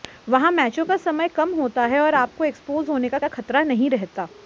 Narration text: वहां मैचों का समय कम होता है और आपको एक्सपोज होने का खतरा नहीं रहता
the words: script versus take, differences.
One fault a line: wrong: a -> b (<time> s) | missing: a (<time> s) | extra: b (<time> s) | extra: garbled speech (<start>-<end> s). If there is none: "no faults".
extra: का (3.2 s)